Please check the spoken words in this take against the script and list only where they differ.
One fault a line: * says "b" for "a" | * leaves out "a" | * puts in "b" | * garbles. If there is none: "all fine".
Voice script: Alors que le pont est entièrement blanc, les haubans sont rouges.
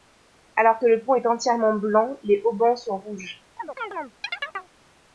all fine